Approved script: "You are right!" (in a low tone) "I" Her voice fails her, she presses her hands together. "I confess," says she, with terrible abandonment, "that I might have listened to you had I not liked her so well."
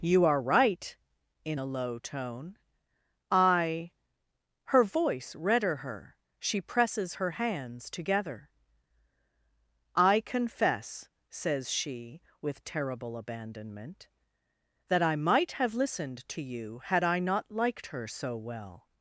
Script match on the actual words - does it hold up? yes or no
no